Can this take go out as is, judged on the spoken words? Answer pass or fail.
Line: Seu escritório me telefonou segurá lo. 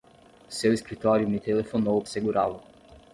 pass